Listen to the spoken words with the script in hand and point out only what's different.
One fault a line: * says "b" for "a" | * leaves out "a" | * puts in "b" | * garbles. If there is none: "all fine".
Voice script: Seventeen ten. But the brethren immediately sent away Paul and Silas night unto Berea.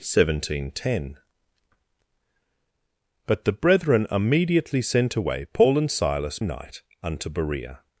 all fine